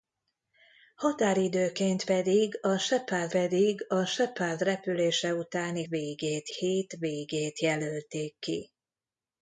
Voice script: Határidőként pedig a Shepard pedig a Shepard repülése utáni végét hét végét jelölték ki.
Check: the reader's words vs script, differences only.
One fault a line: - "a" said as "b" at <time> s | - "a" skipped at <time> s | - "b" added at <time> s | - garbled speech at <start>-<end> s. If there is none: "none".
none